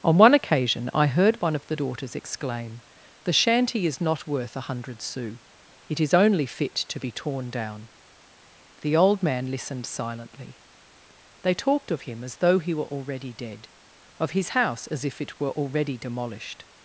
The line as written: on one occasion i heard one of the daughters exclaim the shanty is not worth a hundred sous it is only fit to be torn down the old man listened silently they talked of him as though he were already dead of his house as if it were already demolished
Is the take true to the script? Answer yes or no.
yes